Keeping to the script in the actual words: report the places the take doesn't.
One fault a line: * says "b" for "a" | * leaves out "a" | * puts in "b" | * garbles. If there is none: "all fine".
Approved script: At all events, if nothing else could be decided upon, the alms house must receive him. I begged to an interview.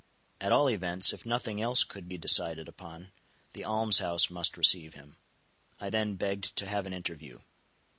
* puts in "then"
* puts in "have"